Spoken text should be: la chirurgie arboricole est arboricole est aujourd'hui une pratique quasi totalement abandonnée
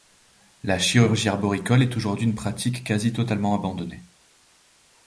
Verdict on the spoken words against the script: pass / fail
fail